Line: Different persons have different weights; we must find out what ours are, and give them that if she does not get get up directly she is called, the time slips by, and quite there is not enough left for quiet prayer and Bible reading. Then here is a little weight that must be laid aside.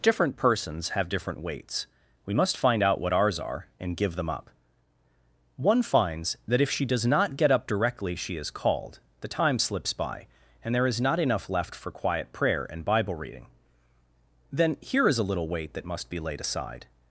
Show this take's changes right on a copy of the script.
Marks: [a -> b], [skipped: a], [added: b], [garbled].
Different persons have different weights; we must find out what ours are, and give them [added: up One finds] that if she does not get [skipped: get] up directly she is called, the time slips by, and [skipped: quite] there is not enough left for quiet prayer and Bible reading. Then here is a little weight that must be laid aside.